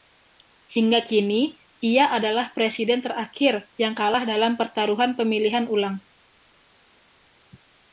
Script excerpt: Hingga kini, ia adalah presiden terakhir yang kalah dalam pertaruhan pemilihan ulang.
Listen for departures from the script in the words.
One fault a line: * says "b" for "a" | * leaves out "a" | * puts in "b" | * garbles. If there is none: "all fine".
all fine